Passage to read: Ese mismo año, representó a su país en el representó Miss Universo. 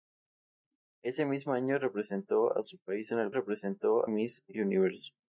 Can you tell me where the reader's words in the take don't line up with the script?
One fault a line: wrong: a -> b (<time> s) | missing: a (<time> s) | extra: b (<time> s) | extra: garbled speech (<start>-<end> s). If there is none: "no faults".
no faults